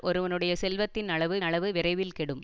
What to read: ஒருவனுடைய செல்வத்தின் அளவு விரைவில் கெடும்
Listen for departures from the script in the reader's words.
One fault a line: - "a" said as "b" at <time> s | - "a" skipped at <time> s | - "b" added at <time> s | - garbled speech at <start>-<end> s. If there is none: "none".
- "அளவு" added at 1.4 s